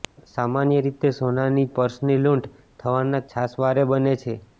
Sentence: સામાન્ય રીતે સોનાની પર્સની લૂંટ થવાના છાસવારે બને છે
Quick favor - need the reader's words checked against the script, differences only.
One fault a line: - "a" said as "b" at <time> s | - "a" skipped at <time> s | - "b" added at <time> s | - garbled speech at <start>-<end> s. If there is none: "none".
none